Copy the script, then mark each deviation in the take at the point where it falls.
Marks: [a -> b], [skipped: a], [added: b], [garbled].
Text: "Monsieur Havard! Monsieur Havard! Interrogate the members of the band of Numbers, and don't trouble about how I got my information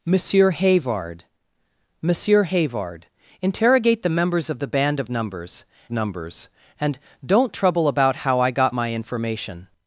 "Monsieur Havard! Monsieur Havard! Interrogate the members of the band of Numbers, [added: Numbers] and don't trouble about how I got my information